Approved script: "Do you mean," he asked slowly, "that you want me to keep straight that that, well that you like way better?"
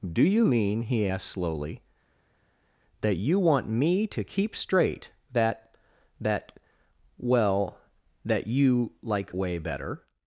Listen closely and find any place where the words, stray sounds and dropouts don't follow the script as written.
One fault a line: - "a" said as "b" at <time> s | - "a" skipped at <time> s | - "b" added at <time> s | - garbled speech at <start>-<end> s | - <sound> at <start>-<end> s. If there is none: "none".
none